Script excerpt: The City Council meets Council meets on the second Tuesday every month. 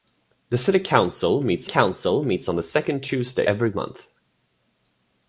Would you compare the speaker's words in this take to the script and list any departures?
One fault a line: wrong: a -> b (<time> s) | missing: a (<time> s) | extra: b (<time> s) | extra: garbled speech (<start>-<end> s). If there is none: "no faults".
no faults